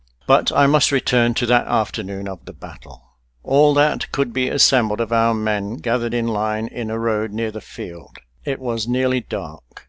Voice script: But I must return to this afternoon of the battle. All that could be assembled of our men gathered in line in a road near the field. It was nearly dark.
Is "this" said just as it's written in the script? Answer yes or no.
no